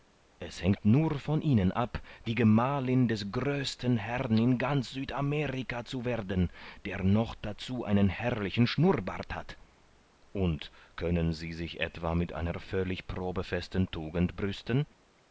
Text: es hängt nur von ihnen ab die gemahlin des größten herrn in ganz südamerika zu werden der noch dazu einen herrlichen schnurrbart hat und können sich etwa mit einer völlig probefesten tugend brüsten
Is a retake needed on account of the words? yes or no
yes